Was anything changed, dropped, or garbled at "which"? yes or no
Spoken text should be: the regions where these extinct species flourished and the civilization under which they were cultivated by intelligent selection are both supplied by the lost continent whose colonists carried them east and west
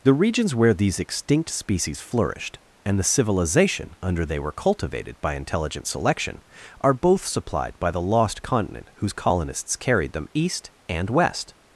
yes